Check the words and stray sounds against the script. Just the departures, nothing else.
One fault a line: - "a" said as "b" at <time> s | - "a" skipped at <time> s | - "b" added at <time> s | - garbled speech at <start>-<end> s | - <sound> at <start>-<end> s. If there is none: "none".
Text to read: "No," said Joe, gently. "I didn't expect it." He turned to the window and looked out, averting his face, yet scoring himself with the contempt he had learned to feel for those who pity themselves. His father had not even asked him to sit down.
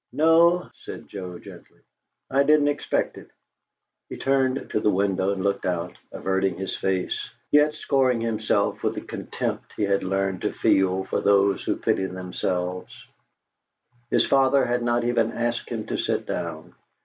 none